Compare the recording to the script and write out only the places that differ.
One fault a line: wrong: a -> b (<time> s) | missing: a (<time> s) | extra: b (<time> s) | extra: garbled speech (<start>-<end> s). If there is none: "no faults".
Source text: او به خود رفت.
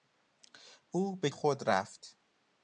no faults